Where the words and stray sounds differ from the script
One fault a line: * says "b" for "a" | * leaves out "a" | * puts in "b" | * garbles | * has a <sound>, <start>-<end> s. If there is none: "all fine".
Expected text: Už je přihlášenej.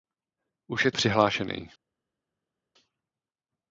all fine